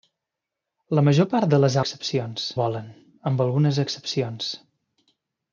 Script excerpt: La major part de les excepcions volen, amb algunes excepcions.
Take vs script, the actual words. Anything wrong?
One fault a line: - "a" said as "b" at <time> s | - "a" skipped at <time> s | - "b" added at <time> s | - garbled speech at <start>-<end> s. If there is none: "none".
none